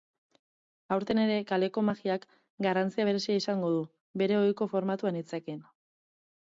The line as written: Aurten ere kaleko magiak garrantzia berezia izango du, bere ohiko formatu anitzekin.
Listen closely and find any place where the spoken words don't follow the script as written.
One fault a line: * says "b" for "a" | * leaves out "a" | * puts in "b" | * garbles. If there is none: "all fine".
all fine